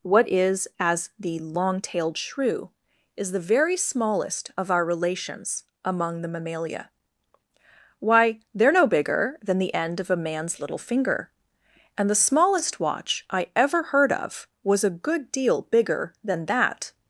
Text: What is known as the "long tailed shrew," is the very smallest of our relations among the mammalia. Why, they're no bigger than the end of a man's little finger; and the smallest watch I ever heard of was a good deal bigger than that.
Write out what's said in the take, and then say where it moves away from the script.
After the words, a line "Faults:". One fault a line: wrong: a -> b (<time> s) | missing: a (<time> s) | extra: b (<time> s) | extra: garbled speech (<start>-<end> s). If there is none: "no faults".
What is as the "long tailed shrew," is the very smallest of our relations among the mammalia. Why, they're no bigger than the end of a man's little finger; and the smallest watch I ever heard of was a good deal bigger than that.
Faults:
missing: known (0.7 s)